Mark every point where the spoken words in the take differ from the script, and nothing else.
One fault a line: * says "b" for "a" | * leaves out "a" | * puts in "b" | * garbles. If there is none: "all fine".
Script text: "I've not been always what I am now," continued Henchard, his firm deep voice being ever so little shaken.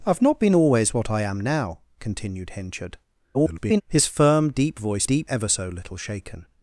* garbles
* says "deep" for "being"